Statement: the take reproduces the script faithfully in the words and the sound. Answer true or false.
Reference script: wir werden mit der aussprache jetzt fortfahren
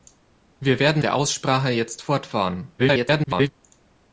false